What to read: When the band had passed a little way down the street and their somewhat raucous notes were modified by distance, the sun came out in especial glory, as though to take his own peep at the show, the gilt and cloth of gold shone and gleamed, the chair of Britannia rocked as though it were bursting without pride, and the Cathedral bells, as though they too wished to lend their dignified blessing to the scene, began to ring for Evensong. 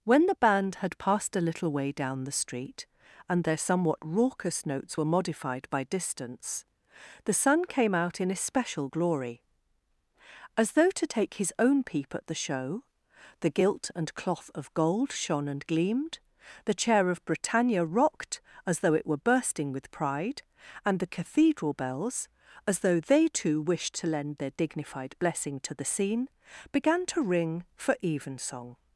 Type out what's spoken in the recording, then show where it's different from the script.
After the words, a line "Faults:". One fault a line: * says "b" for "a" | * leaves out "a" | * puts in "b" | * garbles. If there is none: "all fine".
When the band had passed a little way down the street and their somewhat raucous notes were modified by distance, the sun came out in especial glory, as though to take his own peep at the show, the gilt and cloth of gold shone and gleamed, the chair of Britannia rocked as though it were bursting with pride, and the Cathedral bells, as though they too wished to lend their dignified blessing to the scene, began to ring for Evensong.
Faults:
* says "with" for "without"